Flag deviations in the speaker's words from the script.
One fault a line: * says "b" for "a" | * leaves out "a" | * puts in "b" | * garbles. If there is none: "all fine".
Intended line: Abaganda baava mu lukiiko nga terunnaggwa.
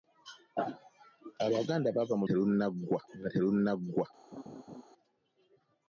* says "terunnaggwa" for "lukiiko"